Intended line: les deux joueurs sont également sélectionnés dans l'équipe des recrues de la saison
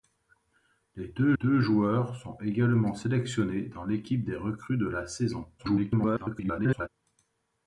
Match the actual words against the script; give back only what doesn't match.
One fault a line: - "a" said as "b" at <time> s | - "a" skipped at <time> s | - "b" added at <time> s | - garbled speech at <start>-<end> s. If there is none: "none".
- "deux" added at 1.3 s
- garbled speech at 5.6-6.9 s